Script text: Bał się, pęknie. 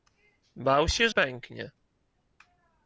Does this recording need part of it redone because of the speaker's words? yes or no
no